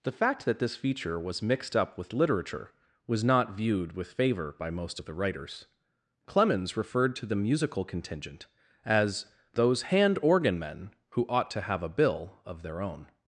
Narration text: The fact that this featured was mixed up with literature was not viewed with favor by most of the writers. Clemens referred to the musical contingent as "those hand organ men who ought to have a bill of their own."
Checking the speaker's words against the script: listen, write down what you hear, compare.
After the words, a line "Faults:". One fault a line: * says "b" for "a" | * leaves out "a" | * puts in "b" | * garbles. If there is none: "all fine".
The fact that this feature was mixed up with literature was not viewed with favor by most of the writers. Clemens referred to the musical contingent as "those hand organ men who ought to have a bill of their own."
Faults:
* says "feature" for "featured"